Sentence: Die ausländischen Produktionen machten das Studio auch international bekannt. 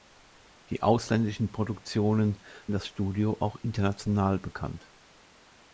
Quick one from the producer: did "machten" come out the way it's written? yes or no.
no